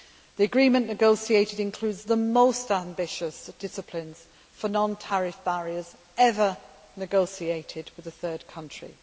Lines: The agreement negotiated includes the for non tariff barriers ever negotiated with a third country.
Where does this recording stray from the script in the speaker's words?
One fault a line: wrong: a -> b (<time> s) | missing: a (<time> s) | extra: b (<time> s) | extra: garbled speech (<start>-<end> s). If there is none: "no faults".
extra: most ambitious disciplines (2.1 s)